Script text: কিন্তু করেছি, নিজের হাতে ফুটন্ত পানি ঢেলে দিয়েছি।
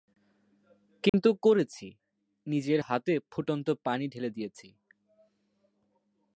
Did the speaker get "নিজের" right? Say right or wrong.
right